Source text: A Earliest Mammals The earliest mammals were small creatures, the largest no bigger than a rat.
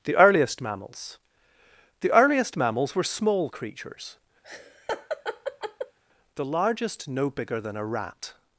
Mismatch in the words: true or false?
true